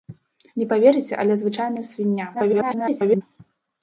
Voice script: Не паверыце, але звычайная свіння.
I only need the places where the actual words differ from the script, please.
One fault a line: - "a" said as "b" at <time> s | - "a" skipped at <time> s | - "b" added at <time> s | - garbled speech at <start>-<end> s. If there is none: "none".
- garbled speech at 2.3-3.2 s